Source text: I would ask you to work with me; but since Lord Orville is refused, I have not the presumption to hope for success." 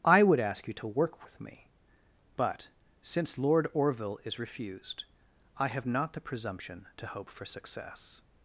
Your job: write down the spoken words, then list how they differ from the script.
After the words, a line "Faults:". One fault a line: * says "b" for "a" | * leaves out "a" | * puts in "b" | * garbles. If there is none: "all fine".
I would ask you to work with me; but since Lord Orville is refused, I have not the presumption to hope for success."
Faults:
all fine